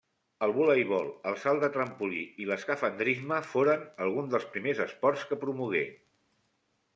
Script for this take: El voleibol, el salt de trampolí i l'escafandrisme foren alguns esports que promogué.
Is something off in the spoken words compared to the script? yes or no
yes